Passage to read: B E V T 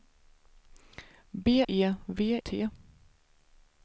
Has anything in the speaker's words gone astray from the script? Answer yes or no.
no